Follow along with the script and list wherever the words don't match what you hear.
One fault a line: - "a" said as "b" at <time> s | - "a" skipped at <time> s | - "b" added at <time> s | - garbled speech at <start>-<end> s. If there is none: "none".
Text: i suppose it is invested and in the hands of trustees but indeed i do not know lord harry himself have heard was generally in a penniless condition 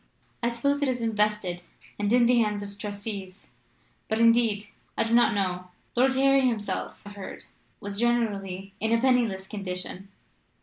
none